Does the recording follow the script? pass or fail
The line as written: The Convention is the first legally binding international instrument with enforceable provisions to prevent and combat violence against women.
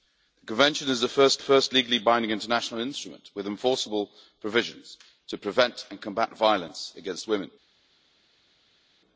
fail